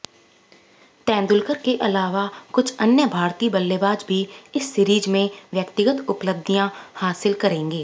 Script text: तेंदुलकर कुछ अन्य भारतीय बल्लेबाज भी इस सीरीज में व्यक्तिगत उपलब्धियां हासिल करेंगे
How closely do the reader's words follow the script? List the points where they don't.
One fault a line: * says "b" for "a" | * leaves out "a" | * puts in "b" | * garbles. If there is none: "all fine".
* puts in "के अलावा"